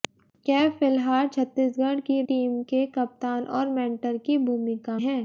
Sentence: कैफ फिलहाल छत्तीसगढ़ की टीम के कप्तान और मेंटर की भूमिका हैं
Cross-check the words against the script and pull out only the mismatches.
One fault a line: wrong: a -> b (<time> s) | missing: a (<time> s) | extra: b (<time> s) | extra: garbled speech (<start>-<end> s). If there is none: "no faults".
no faults